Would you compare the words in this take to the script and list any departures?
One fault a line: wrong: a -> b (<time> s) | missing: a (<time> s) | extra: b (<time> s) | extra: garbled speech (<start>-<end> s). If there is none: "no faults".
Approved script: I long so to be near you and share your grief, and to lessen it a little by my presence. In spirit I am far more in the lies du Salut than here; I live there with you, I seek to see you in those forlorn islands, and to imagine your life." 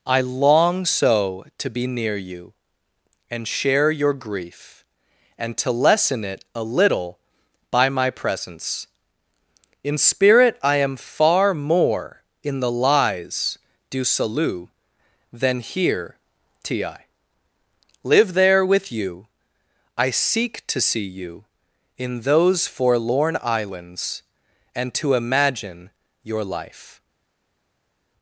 wrong: I -> t.i (16.6 s)